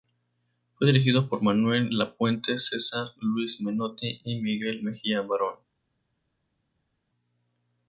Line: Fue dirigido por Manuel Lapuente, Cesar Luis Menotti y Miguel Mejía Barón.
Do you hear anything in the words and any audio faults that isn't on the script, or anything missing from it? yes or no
no